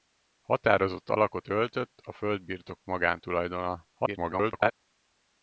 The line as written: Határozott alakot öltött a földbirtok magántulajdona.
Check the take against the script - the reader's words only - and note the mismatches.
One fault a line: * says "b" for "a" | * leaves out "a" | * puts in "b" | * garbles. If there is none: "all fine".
* garbles